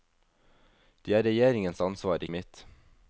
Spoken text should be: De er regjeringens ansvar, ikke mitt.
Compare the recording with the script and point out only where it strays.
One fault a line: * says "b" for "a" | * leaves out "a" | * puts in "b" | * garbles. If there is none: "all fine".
* leaves out "ikke"